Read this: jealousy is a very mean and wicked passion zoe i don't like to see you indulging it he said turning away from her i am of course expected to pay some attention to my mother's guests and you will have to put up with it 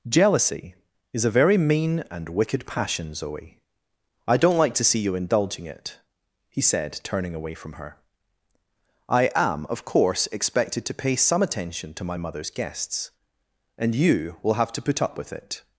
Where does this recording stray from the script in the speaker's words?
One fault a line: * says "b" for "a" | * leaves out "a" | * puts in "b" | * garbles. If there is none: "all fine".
all fine